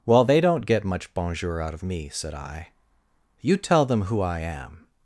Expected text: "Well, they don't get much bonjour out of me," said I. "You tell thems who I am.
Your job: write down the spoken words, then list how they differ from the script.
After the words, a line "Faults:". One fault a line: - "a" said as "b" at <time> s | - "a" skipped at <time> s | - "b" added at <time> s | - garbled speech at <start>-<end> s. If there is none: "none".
"Well, they don't get much bonjour out of me," said I. "You tell them who I am.
Faults:
- "thems" said as "them" at 3.9 s